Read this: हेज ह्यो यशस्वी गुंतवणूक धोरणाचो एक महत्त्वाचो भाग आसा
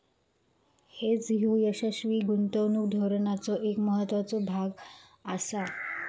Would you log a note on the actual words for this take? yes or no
no